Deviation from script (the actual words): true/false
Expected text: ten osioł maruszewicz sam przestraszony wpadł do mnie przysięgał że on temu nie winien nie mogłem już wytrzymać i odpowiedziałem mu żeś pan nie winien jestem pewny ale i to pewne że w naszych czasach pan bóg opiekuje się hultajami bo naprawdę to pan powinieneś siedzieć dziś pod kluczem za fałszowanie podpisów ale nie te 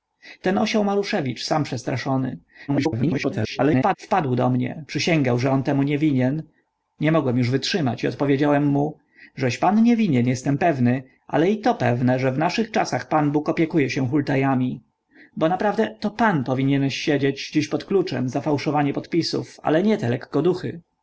true